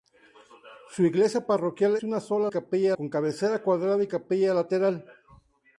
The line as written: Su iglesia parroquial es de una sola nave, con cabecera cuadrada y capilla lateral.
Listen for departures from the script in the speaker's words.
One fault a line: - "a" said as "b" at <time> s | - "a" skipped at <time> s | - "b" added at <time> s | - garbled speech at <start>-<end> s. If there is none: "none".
- "es" skipped at 1.9 s
- "nave" said as "capilla" at 2.5 s